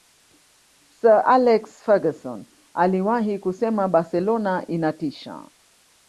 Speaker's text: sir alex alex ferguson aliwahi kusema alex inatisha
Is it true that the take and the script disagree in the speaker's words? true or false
true